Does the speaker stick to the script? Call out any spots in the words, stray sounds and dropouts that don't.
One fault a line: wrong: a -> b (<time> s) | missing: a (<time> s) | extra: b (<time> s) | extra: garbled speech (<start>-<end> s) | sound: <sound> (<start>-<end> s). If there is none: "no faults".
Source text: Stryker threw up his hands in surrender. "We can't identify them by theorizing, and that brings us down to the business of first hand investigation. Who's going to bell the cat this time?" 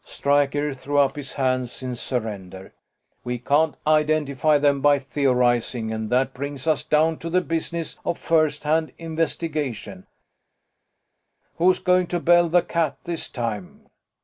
no faults